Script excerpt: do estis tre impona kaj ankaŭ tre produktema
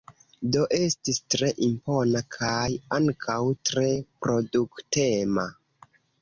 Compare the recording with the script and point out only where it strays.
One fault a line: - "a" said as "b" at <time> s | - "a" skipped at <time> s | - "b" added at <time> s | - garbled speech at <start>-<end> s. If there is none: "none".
none